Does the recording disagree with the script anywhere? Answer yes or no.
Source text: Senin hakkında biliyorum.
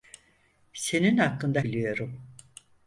no